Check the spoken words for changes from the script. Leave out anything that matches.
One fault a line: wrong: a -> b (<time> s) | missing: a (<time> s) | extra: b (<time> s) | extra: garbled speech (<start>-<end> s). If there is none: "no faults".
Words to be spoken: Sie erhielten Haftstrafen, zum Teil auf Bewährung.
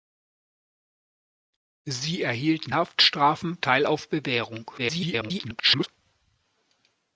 missing: zum (3.6 s)
extra: garbled speech (4.8-5.9 s)